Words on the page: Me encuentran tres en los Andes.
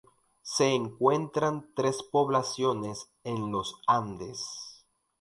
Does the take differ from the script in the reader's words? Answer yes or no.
yes